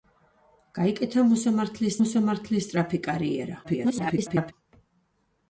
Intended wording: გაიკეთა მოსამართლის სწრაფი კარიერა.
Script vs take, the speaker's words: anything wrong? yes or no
yes